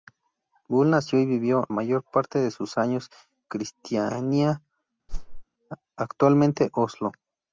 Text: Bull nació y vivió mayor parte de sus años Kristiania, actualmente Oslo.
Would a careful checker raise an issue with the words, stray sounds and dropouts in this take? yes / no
yes